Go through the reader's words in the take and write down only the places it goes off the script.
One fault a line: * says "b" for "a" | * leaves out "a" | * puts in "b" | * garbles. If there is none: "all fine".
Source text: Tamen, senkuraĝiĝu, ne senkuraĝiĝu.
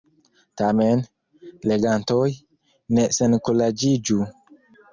* says "legantoj" for "senkuraĝiĝu"